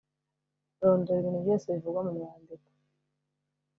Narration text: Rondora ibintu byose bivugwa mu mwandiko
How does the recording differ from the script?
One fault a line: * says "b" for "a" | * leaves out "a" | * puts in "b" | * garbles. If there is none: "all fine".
all fine